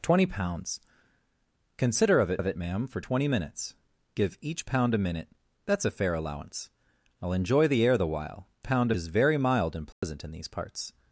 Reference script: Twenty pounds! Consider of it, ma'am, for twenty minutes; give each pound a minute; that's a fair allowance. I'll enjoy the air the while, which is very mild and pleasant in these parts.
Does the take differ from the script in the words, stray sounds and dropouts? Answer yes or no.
yes